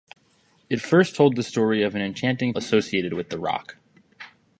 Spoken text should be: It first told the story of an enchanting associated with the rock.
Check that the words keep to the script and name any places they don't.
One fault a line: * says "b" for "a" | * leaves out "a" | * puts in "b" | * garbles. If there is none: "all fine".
all fine